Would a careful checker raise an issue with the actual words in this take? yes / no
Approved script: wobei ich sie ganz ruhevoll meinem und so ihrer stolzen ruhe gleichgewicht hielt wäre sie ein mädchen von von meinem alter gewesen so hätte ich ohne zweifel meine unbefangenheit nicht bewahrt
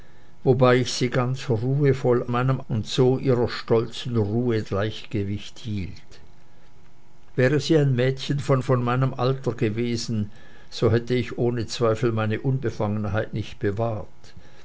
no